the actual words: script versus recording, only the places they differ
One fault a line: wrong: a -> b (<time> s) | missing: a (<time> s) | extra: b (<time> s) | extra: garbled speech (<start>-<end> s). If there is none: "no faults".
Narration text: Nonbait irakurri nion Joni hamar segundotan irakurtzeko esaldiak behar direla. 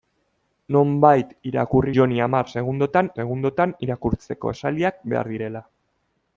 missing: nion (1.9 s)
extra: segundotan (3.2 s)